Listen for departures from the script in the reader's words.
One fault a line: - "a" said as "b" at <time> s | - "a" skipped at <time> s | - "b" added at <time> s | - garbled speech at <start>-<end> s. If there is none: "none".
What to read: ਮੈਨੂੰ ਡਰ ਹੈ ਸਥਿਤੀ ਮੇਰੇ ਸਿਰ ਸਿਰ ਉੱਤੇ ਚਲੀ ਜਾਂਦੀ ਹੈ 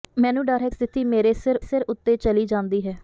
none